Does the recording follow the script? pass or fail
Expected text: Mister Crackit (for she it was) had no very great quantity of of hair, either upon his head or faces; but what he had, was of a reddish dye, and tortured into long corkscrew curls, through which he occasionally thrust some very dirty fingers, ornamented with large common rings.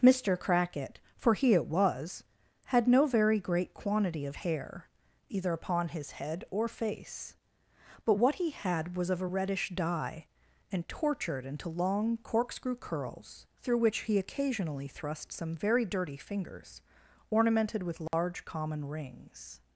fail